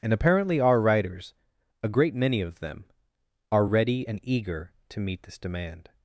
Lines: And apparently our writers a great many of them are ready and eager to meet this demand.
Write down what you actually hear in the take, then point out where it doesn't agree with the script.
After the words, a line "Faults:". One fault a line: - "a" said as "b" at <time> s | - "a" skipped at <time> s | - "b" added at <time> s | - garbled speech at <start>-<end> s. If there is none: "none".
And apparently our writers a great many of them are ready and eager to meet this demand.
Faults:
none